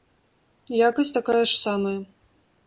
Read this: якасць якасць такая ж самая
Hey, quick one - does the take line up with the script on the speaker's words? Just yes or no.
no